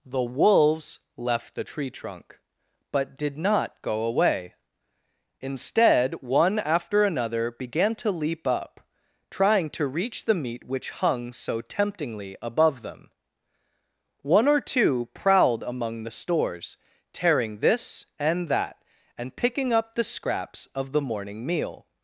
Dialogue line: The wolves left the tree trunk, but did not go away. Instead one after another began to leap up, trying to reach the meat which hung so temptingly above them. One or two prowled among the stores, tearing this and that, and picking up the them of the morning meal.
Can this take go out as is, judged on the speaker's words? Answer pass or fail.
fail